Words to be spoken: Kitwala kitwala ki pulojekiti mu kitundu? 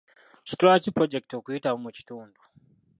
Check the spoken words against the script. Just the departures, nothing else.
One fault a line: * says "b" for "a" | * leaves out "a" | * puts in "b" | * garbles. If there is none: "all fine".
* leaves out "kitwala"
* puts in "okuyitamu"